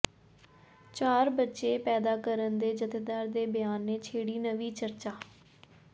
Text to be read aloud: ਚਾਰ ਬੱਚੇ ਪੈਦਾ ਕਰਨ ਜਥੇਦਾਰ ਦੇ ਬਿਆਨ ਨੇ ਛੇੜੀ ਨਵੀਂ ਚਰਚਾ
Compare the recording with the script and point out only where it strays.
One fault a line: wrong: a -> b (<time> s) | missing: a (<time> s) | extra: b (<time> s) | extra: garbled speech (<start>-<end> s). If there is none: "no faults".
extra: ਦੇ (2.6 s)